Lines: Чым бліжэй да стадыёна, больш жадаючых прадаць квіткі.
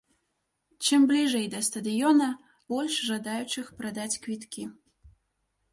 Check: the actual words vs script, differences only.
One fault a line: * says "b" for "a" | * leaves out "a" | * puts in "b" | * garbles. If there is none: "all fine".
all fine